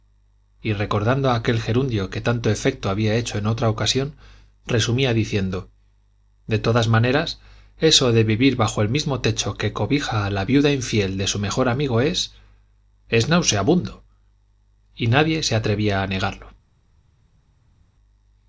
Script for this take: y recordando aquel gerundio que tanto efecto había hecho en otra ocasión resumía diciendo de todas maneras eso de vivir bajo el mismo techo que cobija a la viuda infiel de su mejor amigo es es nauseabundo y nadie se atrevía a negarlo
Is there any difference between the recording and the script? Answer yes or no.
no